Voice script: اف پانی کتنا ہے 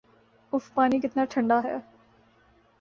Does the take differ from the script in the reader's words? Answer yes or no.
yes